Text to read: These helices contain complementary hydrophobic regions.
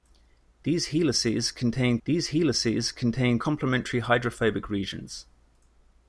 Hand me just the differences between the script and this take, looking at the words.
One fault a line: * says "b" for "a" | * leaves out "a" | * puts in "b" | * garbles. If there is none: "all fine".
* puts in "these helices contain"